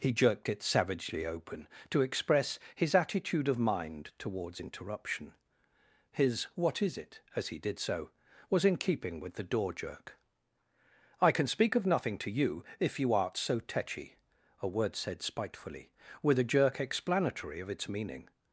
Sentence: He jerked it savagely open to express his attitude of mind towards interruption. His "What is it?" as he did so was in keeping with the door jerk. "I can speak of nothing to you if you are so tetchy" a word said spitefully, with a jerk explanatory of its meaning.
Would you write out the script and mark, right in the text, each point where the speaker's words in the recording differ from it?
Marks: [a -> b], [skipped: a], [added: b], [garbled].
He jerked it savagely open to express his attitude of mind towards interruption. His "What is it?" as he did so was in keeping with the door jerk. "I can speak of nothing to you if you [are -> art] so tetchy" a word said spitefully, with a jerk explanatory of its meaning.